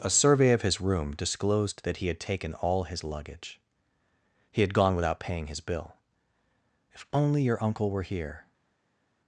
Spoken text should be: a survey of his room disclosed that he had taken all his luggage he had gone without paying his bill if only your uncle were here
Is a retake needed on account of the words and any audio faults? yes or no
no